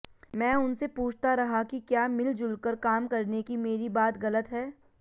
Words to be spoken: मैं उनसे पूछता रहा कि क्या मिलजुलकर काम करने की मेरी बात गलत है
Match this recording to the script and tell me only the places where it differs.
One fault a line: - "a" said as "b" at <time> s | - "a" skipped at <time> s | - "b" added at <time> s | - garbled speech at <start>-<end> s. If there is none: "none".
none